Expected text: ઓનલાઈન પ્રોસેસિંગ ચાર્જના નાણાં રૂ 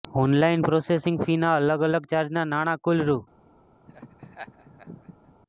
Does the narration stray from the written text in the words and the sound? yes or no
yes